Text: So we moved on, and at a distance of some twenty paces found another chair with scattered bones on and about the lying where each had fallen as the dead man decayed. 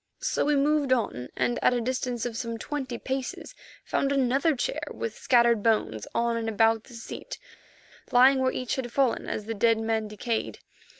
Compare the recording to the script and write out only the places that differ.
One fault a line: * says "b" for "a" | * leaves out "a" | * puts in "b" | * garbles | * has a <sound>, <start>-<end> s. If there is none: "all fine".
* puts in "seat"